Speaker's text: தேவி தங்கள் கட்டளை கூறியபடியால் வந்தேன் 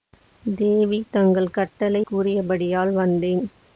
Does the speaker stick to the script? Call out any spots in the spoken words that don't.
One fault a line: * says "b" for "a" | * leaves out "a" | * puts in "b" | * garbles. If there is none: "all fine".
all fine